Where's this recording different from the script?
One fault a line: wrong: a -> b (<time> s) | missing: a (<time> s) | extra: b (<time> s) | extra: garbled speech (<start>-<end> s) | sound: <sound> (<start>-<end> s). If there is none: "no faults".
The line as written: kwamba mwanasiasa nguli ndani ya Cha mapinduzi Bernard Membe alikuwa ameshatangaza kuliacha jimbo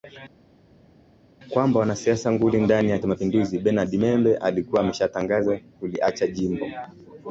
no faults